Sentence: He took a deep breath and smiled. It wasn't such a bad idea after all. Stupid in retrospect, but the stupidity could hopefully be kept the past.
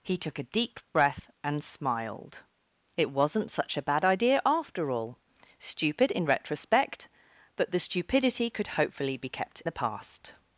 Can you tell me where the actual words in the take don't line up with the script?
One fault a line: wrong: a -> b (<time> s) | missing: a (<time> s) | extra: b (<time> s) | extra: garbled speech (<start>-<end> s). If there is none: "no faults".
no faults